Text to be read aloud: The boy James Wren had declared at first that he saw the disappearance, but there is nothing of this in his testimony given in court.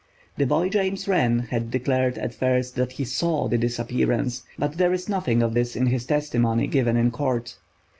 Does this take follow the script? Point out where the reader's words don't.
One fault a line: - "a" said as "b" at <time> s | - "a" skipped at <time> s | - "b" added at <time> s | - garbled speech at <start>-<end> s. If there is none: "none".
none